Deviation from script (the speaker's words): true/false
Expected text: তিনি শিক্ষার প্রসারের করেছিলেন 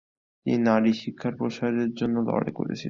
true